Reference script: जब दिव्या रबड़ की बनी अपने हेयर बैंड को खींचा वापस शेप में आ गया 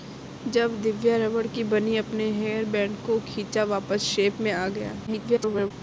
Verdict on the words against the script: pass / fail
fail